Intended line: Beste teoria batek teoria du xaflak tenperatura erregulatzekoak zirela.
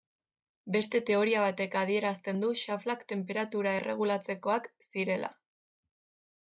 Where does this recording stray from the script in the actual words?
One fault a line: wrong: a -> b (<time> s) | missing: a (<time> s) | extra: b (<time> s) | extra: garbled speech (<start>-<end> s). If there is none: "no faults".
wrong: teoria -> adierazten (1.8 s)